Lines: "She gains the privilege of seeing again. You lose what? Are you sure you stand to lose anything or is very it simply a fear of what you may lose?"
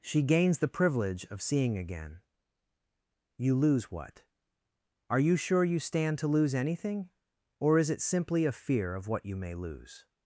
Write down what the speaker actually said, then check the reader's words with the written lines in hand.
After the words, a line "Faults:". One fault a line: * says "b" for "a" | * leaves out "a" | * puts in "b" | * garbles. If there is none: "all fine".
"She gains the privilege of seeing again. You lose what? Are you sure you stand to lose anything or is it simply a fear of what you may lose?"
Faults:
* leaves out "very"